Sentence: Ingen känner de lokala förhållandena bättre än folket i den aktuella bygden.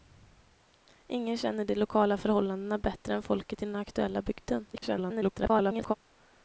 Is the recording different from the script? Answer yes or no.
yes